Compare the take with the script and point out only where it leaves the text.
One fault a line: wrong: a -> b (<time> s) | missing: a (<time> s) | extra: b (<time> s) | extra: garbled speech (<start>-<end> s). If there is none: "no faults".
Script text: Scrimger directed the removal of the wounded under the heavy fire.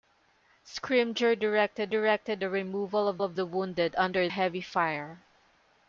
extra: directed (1.9 s)
extra: of (3.2 s)
missing: the (4.3 s)